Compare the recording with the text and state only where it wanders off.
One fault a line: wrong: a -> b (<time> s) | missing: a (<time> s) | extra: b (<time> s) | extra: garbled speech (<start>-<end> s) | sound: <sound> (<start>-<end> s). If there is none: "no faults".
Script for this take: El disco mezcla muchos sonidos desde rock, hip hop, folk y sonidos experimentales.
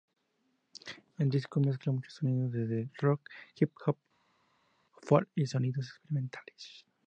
no faults